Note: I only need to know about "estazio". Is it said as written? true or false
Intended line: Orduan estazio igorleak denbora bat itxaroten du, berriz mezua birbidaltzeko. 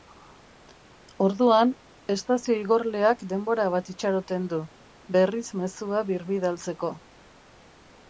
true